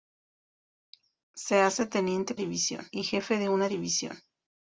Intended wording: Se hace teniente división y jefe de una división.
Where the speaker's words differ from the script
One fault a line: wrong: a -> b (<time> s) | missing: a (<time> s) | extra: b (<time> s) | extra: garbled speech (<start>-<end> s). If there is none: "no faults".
no faults